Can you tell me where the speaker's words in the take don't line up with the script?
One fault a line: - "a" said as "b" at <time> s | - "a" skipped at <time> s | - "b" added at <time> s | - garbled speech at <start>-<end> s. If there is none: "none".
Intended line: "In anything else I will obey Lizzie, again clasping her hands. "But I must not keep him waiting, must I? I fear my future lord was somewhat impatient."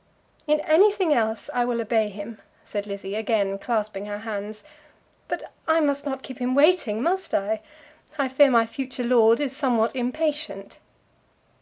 - "him said" added at 2.1 s
- "was" said as "is" at 9.4 s